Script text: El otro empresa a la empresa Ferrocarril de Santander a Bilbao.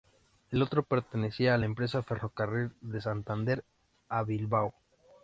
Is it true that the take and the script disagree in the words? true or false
true